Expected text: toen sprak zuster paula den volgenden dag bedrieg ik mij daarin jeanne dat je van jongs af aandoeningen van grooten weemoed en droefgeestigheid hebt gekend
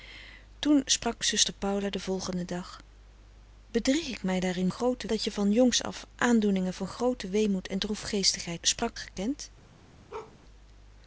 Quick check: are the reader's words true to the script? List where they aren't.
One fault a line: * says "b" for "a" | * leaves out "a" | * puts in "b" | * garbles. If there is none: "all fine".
* says "grooten" for "jeanne"
* says "sprak" for "hebt"